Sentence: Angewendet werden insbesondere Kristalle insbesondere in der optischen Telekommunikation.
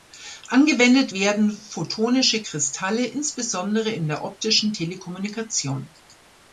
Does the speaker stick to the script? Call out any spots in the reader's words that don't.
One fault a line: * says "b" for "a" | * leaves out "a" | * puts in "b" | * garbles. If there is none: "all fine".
* says "photonische" for "insbesondere"